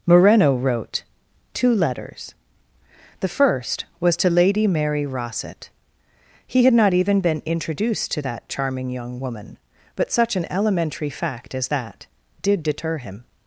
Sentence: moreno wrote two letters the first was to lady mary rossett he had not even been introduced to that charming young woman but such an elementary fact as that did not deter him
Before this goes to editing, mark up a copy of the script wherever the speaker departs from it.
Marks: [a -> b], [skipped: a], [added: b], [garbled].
moreno wrote two letters the first was to lady mary rossett he had not even been introduced to that charming young woman but such an elementary fact as that did [skipped: not] deter him